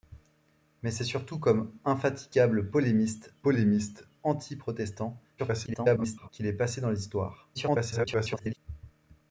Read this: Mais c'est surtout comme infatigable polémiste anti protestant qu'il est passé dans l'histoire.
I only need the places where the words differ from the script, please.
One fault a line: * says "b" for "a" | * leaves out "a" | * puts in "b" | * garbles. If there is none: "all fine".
* puts in "polémiste"
* garbles
* garbles